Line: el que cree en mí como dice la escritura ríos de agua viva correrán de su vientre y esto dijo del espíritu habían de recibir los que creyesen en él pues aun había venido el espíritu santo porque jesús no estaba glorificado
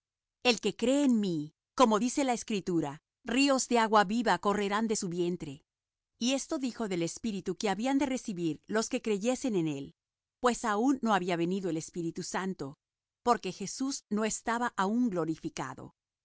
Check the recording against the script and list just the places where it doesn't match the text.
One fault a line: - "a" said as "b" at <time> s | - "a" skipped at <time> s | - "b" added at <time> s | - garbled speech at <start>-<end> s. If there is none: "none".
- "que" added at 7.6 s
- "no" added at 11.0 s
- "aún" added at 14.8 s